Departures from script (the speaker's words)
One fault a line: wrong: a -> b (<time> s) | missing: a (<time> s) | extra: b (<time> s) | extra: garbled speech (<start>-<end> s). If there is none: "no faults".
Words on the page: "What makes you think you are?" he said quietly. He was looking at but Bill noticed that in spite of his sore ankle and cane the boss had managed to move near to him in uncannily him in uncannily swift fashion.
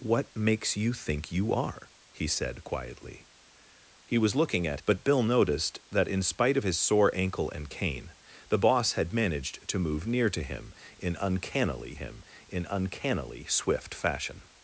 no faults